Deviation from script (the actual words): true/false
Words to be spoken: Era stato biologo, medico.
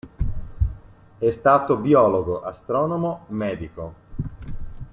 true